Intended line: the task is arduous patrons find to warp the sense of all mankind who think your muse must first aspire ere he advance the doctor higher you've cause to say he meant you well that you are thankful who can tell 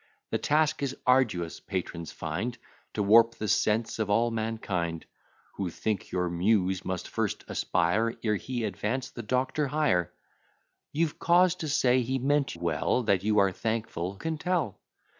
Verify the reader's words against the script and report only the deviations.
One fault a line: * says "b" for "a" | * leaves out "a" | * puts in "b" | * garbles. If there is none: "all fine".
* leaves out "you"
* leaves out "who"